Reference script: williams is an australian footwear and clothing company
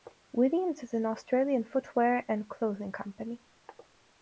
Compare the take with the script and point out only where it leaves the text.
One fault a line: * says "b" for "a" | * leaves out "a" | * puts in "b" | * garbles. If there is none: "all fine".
all fine